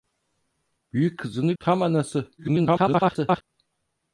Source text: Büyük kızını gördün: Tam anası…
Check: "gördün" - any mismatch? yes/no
yes